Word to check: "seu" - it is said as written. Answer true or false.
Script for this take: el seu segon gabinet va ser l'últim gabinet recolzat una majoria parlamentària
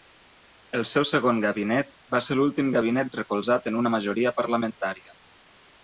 true